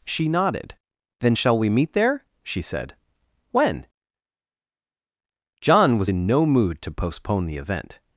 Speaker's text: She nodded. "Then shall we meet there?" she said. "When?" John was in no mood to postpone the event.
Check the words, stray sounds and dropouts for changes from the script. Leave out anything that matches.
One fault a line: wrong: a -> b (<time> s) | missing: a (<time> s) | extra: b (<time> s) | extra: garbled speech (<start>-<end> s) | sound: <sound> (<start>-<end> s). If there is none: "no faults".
no faults